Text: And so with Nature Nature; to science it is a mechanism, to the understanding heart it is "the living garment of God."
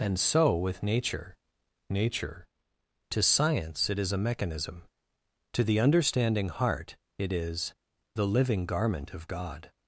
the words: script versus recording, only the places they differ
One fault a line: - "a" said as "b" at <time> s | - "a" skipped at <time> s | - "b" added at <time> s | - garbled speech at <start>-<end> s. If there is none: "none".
none